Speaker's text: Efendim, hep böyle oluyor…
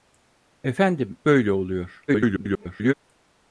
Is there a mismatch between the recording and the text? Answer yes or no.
yes